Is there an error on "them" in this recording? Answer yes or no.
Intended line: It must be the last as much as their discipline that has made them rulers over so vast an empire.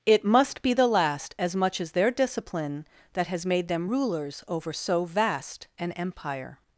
no